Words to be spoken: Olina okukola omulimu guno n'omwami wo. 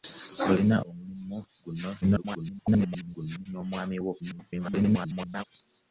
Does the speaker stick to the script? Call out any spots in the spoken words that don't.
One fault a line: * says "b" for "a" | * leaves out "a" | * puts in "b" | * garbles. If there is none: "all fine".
* leaves out "okukola"
* garbles
* garbles